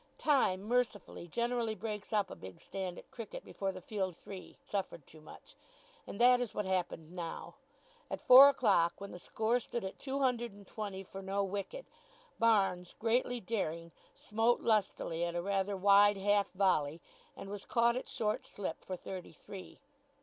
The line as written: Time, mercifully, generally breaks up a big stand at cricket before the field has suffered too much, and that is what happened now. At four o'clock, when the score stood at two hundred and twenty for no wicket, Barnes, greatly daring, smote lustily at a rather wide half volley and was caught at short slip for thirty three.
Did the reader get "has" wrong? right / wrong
wrong